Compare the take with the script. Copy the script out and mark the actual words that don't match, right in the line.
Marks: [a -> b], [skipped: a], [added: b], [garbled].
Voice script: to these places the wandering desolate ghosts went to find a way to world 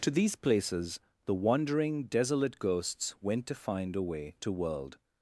to these places the wandering desolate ghosts went to find a way to world